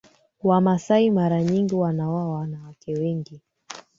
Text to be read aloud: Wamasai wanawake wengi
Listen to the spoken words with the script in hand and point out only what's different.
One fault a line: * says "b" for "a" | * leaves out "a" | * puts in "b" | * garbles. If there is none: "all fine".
* puts in "mara nyingi wanaoa"